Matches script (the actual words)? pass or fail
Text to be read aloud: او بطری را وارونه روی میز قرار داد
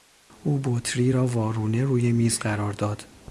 pass